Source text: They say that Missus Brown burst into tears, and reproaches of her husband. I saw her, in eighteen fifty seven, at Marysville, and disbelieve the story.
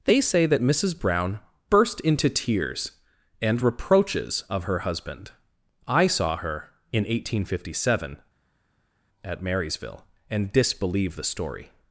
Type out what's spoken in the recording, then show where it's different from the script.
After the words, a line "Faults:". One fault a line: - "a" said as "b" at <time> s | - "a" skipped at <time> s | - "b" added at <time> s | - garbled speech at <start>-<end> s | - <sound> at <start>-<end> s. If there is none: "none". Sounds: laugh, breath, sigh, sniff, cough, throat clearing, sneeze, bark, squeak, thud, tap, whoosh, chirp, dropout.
They say that Missus Brown burst into tears, and reproaches of her husband. I saw her, in eighteen fifty seven, at Marysville, and disbelieve the story.
Faults:
none